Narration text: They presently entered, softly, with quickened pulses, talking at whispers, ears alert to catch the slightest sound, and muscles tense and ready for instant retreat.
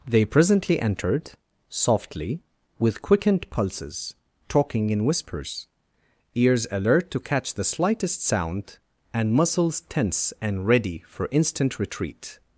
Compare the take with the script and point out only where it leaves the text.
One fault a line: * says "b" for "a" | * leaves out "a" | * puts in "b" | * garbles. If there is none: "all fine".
* says "in" for "at"